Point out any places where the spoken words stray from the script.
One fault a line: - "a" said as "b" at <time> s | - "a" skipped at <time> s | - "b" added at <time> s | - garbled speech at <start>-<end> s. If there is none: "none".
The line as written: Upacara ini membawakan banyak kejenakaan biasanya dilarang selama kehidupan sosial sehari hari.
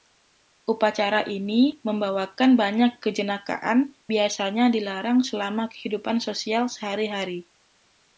none